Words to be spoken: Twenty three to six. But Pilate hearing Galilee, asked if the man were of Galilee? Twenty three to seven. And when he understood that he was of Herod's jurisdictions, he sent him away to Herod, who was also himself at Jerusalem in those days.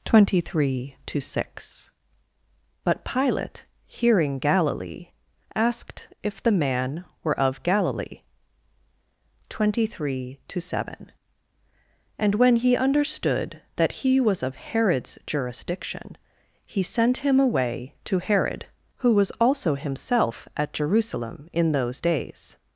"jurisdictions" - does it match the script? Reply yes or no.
no